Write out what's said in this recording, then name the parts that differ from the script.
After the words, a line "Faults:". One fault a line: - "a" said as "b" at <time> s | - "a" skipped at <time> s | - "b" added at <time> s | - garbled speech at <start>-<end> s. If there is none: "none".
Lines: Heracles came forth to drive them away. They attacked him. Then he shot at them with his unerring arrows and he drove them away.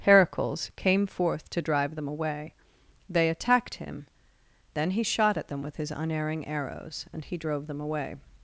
Heracles came forth to drive them away. They attacked him. Then he shot at them with his unerring arrows and he drove them away.
Faults:
none